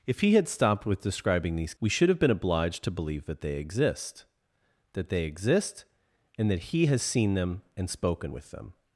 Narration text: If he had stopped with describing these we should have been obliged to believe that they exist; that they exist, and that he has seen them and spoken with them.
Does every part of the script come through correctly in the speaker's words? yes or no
yes